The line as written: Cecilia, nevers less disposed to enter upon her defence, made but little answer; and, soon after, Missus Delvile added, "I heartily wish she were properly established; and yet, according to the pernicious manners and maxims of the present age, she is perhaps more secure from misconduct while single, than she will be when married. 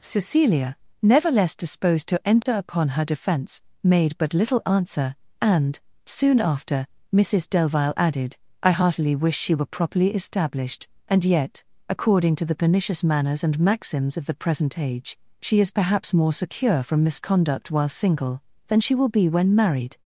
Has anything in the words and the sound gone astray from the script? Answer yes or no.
yes